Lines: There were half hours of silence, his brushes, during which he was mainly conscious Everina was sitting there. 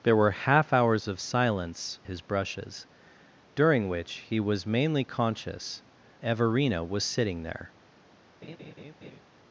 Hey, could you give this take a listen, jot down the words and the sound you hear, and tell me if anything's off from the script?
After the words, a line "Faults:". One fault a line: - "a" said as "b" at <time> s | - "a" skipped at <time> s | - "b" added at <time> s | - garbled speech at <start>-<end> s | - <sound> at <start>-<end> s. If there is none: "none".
There were half hours of silence, his brushes, during which he was mainly conscious Everina was sitting there.
Faults:
- laugh at 8.4-9.2 s